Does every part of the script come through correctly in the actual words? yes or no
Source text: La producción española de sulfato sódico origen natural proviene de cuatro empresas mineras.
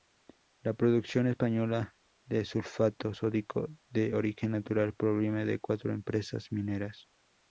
no